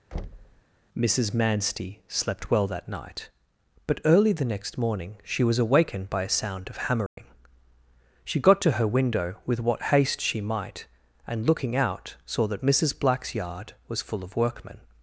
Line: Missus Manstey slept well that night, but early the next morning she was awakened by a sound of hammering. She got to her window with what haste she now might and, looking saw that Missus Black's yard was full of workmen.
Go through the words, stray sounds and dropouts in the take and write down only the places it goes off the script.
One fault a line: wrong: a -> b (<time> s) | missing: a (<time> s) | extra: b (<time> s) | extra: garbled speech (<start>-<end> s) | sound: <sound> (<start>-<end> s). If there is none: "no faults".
sound: thud (0.1-0.6 s)
sound: dropout (7.1-7.2 s)
missing: now (10.4 s)
extra: out (11.8 s)